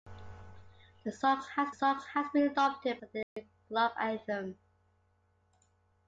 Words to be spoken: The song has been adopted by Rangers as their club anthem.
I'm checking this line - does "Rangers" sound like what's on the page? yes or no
no